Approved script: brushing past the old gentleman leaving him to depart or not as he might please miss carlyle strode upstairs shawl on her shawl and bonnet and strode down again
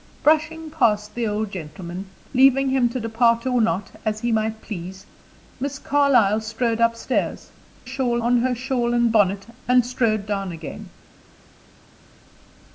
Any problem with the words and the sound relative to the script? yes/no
no